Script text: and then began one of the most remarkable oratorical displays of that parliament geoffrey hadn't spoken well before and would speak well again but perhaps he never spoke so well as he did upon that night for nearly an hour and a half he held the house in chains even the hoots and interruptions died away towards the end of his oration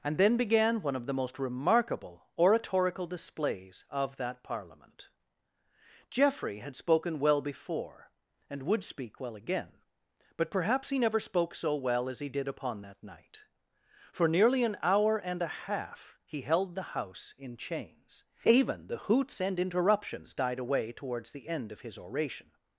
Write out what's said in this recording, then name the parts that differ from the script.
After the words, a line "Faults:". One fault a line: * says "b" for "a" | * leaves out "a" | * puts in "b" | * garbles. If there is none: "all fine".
and then began one of the most remarkable oratorical displays of that parliament geoffrey had spoken well before and would speak well again but perhaps he never spoke so well as he did upon that night for nearly an hour and a half he held the house in chains even the hoots and interruptions died away towards the end of his oration
Faults:
* says "had" for "hadn't"